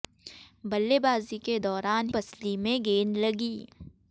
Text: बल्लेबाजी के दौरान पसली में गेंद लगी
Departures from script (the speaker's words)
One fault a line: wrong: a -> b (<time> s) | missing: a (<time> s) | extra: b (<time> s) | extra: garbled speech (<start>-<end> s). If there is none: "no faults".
no faults